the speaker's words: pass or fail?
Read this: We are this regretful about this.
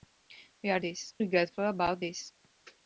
pass